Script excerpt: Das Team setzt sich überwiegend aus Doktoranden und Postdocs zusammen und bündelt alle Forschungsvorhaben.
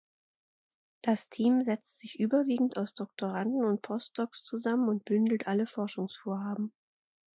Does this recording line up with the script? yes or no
yes